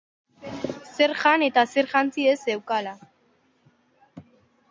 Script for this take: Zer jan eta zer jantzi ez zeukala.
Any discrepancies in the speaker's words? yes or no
no